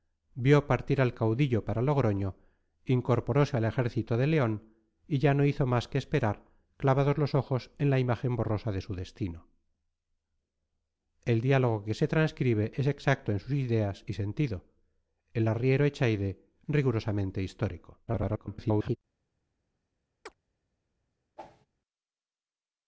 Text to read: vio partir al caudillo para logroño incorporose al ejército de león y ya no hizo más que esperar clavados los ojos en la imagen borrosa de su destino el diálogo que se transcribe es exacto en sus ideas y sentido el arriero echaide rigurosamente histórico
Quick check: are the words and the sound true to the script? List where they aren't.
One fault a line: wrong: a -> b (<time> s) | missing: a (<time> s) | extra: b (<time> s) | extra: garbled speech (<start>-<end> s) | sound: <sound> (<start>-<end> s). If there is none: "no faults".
extra: garbled speech (18.1-19.0 s)
sound: chirp (20.3-20.4 s)
sound: whoosh (21.4-21.7 s)